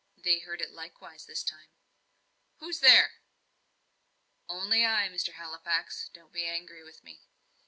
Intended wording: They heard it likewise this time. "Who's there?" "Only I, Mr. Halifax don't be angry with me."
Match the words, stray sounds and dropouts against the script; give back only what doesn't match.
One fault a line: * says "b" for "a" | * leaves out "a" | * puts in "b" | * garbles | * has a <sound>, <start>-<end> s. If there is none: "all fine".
all fine